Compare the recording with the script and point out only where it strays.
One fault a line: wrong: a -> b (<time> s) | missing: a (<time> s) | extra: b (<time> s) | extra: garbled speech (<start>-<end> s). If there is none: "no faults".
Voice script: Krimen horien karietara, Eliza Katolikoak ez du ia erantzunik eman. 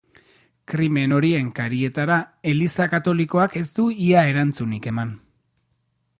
no faults